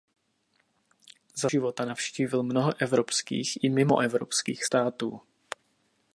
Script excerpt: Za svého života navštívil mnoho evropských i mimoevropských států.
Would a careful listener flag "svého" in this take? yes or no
yes